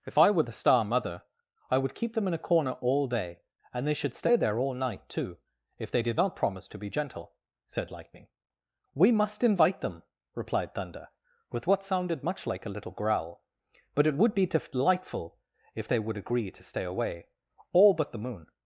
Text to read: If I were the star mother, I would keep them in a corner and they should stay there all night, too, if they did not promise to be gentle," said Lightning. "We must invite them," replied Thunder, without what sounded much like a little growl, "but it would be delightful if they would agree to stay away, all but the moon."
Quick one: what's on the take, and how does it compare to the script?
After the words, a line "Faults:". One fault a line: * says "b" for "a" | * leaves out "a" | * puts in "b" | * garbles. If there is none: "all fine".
If I were the star mother, I would keep them in a corner all day, and they should stay there all night, too, if they did not promise to be gentle," said Lightning. "We must invite them," replied Thunder, with what sounded much like a little growl, "but it would be delightful if they would agree to stay away, all but the moon."
Faults:
* puts in "all day"
* says "with" for "without"